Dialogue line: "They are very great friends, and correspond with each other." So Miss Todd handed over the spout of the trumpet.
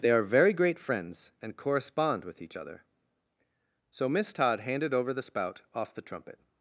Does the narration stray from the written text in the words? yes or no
yes